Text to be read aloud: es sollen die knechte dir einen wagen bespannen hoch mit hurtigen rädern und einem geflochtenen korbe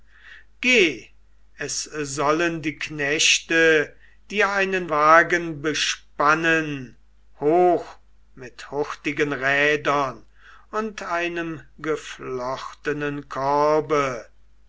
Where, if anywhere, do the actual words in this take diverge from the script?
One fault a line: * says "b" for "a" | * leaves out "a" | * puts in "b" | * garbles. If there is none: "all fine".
all fine